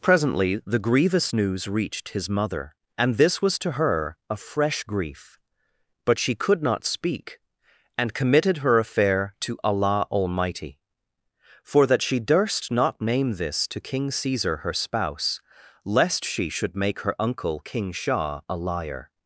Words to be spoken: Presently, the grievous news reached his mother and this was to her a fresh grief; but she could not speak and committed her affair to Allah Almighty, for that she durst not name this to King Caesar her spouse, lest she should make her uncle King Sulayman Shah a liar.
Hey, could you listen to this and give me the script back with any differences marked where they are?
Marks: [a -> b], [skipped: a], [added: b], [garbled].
Presently, the grievous news reached his mother and this was to her a fresh grief; but she could not speak and committed her affair to Allah Almighty, for that she durst not name this to King Caesar her spouse, lest she should make her uncle King [skipped: Sulayman] Shah a liar.